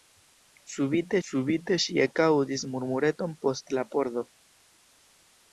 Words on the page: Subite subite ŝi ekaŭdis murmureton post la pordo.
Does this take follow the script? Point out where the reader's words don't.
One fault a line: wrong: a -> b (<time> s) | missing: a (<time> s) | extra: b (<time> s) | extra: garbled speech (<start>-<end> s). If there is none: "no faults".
no faults